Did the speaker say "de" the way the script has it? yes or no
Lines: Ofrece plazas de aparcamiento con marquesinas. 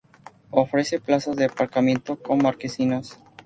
yes